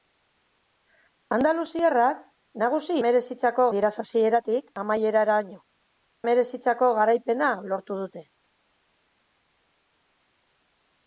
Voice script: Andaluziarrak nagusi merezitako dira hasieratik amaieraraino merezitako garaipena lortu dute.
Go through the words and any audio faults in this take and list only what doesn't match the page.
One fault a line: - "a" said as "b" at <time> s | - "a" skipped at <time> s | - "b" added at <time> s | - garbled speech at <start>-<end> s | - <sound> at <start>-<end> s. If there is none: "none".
none